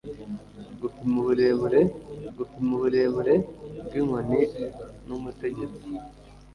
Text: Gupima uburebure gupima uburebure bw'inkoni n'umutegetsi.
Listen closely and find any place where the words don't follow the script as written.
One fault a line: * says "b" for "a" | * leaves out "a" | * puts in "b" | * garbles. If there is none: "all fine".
all fine